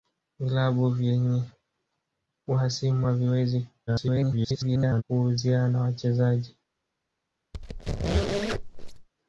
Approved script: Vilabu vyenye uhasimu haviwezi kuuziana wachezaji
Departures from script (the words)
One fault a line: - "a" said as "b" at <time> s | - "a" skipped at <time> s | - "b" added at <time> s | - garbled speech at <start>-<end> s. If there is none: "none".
- garbled speech at 3.9-5.0 s